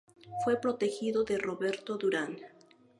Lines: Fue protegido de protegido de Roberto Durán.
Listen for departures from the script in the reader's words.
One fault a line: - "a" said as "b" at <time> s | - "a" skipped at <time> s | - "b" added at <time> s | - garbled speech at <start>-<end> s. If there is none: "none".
- "protegido de" skipped at 1.4 s